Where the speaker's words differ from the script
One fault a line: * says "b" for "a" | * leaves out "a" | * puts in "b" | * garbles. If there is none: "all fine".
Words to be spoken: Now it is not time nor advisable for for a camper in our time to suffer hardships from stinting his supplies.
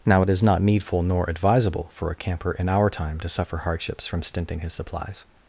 * says "needful" for "time"
* leaves out "for"